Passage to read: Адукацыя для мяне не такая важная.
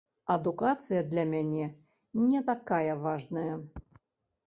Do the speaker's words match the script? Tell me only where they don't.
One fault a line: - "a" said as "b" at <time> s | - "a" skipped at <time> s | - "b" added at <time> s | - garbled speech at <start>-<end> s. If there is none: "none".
none